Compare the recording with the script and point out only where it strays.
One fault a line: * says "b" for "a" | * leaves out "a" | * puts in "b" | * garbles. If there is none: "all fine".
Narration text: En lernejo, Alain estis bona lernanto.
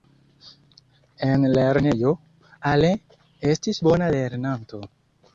all fine